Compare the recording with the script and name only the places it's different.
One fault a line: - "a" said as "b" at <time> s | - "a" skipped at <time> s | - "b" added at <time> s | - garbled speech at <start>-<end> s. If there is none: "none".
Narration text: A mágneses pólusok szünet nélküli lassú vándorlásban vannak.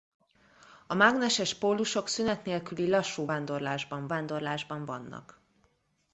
- "vándorlásban" added at 4.1 s